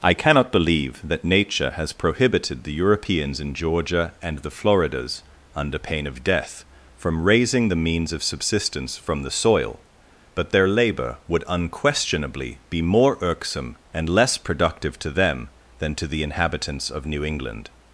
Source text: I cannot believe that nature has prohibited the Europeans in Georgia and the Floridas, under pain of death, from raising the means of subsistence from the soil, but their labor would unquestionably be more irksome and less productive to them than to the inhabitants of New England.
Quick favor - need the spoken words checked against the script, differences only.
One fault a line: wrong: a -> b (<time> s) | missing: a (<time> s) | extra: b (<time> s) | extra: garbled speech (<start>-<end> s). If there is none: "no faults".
no faults